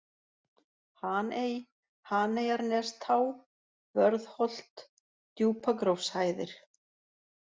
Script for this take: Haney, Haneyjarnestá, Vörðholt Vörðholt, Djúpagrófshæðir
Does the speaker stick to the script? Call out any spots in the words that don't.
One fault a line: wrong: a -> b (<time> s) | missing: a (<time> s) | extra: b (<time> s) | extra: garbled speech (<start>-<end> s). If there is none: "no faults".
missing: Vörðholt (4.8 s)